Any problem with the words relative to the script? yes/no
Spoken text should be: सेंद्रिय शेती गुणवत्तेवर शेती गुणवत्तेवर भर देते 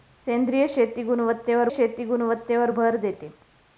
no